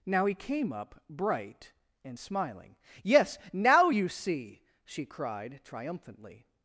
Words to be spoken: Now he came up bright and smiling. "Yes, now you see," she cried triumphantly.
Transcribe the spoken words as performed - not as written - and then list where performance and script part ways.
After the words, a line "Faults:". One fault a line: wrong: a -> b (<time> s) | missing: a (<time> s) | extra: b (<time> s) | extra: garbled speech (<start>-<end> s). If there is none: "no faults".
Now he came up bright and smiling. "Yes, now you see," she cried triumphantly.
Faults:
no faults